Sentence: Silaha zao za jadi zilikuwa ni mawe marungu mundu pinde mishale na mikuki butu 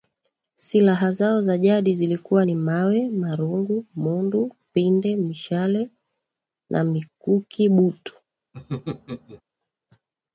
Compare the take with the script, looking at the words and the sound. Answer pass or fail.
fail